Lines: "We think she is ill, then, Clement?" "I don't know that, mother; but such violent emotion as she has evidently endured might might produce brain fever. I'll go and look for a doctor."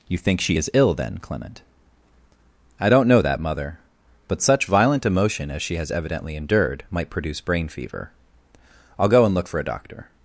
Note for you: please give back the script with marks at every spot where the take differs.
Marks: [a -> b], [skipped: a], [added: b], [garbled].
["We -> You] think she is ill, then, Clement?" "I don't know that, mother; but such violent emotion as she has evidently endured might [skipped: might] produce brain fever. I'll go and look for a doctor."